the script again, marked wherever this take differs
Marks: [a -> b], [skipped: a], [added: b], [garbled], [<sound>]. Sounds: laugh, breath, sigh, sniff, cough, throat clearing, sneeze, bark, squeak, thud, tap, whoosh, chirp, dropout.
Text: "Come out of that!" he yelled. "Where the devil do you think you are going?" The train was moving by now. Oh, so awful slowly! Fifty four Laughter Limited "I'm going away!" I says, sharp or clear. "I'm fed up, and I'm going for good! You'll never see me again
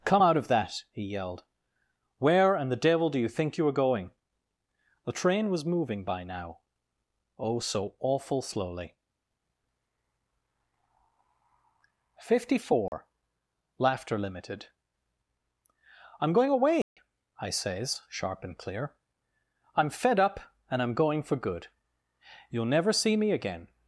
"Come out of that!" he yelled. "Where [added: and] the devil do you think you are going?" The train was moving by now. Oh, so awful slowly! Fifty four [dropout] Laughter Limited "I'm going away!" [dropout] I says, sharp [or -> and] clear. "I'm fed up, and I'm going for good! You'll never see me again